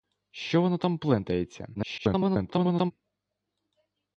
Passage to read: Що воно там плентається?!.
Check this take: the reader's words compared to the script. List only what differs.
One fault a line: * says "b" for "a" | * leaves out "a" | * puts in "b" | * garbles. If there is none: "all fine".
* garbles